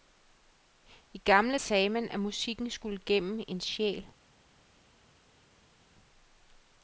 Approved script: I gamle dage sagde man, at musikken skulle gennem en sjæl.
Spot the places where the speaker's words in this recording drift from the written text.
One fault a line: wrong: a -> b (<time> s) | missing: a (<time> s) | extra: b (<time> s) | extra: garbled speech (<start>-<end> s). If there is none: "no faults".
missing: dage (1.6 s)